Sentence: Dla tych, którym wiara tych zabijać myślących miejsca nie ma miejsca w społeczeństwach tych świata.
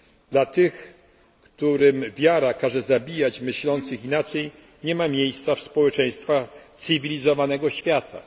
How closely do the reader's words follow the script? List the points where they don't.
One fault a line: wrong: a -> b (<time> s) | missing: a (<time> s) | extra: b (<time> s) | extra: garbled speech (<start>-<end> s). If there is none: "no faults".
wrong: tych -> każe (2.5 s)
wrong: miejsca -> inaczej (4.0 s)
wrong: tych -> cywilizowanego (6.8 s)